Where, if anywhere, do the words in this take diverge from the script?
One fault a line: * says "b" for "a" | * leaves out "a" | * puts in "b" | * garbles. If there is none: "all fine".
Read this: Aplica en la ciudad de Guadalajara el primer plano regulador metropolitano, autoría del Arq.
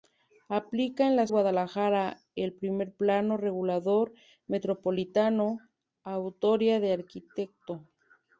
* leaves out "ciudad de"